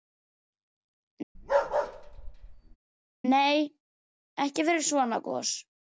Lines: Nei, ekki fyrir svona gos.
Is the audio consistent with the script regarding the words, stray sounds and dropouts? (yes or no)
no